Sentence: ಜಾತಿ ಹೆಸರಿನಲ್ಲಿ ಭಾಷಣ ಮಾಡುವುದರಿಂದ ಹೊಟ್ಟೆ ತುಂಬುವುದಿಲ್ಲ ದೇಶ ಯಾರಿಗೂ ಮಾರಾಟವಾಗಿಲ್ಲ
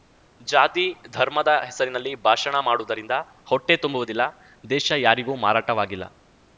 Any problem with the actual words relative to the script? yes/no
yes